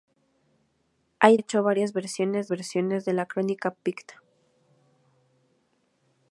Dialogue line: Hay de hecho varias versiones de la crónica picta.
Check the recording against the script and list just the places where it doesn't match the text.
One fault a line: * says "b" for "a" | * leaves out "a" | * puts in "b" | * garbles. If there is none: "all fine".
* leaves out "de"
* puts in "versiones"